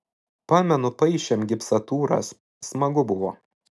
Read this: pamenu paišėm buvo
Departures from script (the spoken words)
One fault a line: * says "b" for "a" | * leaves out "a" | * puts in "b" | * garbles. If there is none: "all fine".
* puts in "gipsatūras smagu"